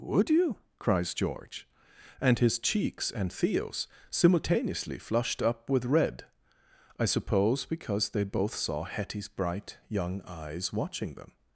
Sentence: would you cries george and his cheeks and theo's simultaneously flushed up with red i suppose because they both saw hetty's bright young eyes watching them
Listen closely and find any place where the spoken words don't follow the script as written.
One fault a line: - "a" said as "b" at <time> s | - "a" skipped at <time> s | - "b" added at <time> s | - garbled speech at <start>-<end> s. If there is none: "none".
none